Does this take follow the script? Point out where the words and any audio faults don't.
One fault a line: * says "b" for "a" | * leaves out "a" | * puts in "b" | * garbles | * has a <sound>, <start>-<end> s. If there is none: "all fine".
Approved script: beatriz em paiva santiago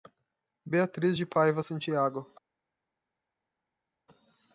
* says "de" for "em"